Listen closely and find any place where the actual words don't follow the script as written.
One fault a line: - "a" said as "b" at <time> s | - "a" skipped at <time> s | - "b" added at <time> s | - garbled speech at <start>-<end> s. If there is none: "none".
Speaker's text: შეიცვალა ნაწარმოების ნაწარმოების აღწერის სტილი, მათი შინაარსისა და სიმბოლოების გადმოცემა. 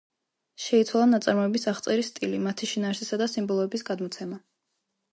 - "ნაწარმოების" skipped at 1.7 s